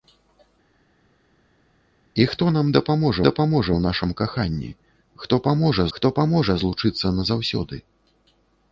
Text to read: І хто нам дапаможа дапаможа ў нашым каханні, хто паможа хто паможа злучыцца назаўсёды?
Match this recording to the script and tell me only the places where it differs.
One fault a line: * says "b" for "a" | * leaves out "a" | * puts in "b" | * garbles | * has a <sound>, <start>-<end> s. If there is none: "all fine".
all fine